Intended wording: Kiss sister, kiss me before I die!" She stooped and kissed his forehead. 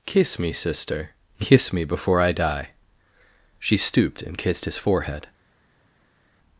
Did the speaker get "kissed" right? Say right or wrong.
right